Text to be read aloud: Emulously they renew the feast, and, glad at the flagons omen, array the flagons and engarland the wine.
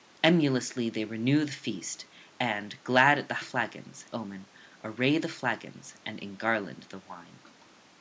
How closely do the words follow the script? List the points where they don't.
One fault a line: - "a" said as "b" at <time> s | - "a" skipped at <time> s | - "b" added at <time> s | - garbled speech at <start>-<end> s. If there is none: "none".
none